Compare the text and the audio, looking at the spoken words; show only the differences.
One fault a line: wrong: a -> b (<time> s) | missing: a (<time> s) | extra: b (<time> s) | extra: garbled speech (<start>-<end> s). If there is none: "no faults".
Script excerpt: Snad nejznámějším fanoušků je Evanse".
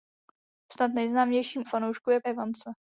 no faults